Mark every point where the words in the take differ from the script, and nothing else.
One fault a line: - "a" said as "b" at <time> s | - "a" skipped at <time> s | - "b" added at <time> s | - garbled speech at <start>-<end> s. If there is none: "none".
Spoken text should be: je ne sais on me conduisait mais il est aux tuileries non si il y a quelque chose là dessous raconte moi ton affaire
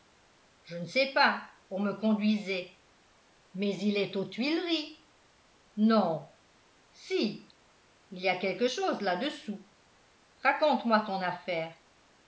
- "pas" added at 1.1 s